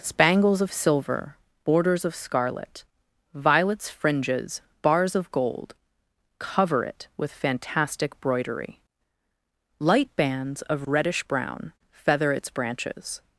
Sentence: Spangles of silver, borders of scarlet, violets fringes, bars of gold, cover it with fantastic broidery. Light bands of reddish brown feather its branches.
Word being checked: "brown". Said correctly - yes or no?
yes